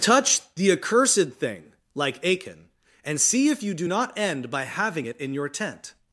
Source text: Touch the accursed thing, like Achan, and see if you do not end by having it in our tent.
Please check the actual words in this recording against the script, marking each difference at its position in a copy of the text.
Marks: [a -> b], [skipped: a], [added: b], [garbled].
Touch the accursed thing, like Achan, and see if you do not end by having it in [our -> your] tent.